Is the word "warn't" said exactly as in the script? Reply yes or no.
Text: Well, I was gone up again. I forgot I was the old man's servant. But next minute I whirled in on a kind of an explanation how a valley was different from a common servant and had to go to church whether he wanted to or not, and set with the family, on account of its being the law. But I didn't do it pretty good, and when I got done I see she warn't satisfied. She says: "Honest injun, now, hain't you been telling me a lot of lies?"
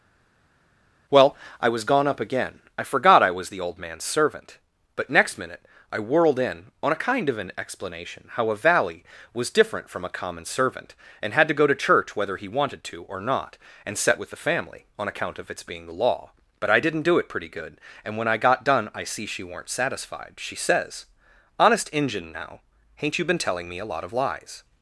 no